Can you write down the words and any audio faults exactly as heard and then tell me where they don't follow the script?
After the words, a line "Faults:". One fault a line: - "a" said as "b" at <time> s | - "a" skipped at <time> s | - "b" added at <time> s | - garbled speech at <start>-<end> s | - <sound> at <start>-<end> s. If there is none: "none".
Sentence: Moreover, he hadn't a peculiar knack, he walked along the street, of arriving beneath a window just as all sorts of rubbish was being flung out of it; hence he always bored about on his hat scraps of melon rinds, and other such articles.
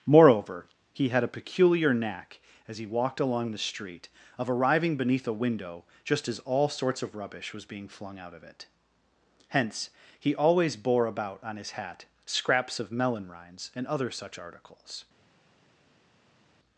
Moreover, he had a peculiar knack, as he walked along the street, of arriving beneath a window just as all sorts of rubbish was being flung out of it; hence he always bore about on his hat scraps of melon rinds, and other such articles.
Faults:
- "hadn't" said as "had" at 1.1 s
- "as" added at 2.7 s
- "bored" said as "bore" at 10.8 s